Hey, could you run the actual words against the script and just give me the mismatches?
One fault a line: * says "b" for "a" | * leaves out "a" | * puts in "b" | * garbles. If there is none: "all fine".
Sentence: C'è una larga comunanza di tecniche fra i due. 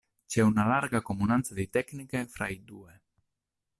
all fine